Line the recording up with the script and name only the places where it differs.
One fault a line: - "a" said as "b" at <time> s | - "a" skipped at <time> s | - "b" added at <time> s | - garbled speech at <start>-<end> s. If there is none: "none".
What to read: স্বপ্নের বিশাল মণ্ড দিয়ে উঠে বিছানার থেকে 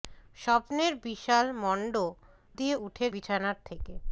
none